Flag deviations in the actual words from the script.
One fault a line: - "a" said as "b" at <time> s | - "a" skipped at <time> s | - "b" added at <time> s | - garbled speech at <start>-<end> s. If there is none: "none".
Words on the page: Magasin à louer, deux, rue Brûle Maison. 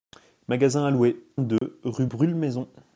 none